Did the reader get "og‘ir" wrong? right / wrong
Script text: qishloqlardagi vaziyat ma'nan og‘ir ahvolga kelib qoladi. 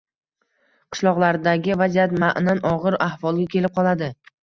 right